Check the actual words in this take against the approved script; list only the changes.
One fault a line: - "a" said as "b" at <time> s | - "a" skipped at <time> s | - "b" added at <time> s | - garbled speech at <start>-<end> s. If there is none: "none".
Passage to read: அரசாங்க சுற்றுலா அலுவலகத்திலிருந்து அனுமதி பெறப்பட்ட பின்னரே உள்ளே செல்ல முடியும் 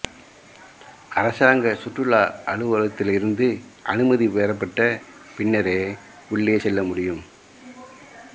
none